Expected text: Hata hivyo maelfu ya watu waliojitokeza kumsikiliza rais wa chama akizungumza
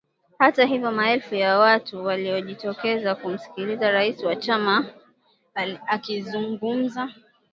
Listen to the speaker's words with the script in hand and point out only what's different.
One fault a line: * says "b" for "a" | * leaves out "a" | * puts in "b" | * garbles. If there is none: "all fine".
all fine